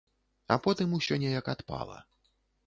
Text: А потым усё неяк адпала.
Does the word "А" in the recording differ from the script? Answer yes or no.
no